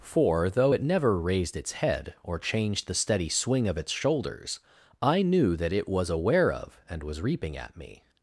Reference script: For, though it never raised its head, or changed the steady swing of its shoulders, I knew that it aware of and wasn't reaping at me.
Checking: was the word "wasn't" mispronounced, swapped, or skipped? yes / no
yes